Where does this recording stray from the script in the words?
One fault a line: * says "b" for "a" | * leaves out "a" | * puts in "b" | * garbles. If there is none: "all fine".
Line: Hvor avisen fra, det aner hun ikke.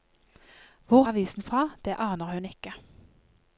all fine